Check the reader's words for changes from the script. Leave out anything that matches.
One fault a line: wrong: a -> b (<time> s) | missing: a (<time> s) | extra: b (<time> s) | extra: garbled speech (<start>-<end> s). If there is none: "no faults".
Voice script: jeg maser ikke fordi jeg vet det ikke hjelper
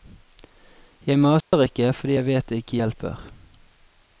no faults